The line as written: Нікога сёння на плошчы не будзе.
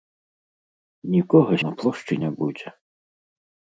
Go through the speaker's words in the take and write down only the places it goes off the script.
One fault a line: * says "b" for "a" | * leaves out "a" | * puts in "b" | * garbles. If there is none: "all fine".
* leaves out "сёння"